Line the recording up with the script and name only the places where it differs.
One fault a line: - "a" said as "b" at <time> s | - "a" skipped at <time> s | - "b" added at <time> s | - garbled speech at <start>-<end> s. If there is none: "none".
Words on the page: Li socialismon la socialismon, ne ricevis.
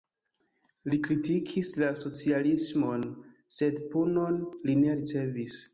- "socialismon" said as "kritikis" at 1.1 s
- "sed punon li" added at 3.6 s